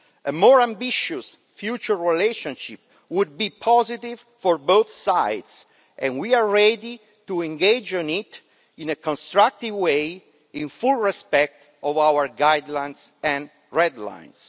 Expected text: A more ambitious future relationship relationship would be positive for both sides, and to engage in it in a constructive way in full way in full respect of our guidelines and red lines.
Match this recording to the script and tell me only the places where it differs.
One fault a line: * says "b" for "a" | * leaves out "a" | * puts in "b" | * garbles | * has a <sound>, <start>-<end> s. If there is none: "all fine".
* leaves out "relationship"
* puts in "we are ready"
* leaves out "way in full"